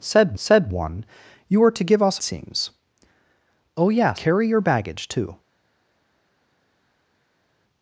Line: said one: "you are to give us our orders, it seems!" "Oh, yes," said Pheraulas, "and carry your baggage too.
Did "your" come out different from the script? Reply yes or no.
no